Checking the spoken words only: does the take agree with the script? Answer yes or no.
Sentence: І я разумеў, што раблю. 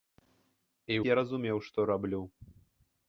yes